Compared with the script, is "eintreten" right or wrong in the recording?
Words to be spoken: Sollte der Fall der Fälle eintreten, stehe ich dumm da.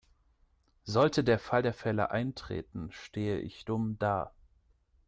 right